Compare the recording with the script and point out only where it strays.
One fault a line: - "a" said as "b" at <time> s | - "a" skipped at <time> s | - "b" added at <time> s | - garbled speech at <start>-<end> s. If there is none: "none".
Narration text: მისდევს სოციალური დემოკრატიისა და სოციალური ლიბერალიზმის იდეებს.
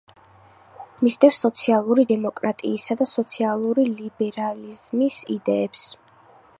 none